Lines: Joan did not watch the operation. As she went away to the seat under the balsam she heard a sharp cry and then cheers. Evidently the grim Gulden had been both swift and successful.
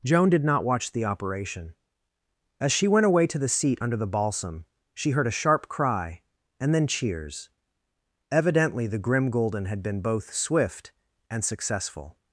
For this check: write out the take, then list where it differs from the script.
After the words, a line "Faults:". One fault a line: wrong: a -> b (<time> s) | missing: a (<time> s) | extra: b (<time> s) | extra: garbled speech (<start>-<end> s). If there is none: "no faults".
Joan did not watch the operation. As she went away to the seat under the balsam she heard a sharp cry and then cheers. Evidently the grim Gulden had been both swift and successful.
Faults:
no faults